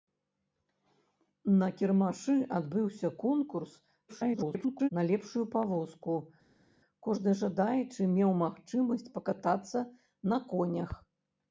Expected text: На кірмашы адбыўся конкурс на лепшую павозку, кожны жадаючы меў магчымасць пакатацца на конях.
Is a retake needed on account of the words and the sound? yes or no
yes